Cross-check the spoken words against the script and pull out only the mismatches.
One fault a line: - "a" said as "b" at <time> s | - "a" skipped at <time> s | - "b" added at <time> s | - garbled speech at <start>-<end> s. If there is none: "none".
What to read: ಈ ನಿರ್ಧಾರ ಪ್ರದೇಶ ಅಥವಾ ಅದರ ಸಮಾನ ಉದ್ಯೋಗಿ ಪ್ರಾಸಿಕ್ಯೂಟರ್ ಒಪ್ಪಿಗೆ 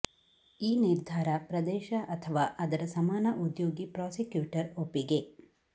none